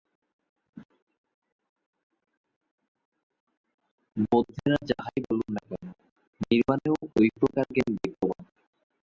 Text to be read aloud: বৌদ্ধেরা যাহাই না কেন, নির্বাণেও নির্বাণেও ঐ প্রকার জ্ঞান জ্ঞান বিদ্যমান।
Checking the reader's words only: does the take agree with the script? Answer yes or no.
no